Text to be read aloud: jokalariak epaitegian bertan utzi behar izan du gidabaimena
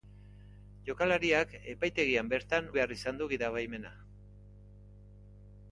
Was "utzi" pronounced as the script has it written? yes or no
no